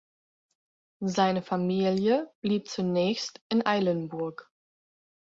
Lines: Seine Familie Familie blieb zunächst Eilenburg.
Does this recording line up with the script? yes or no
no